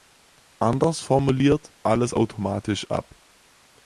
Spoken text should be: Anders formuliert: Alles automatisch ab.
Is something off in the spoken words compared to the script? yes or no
no